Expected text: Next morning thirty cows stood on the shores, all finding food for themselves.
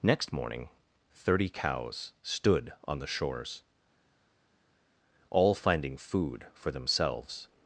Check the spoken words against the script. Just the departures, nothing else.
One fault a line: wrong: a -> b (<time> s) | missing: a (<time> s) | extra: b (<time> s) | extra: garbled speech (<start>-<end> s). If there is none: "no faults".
no faults